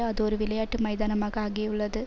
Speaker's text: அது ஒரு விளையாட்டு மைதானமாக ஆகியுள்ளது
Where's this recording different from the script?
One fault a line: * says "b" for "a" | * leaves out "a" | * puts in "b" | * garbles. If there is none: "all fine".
all fine